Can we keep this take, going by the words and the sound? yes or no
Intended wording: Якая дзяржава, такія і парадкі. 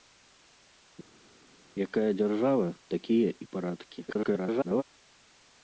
no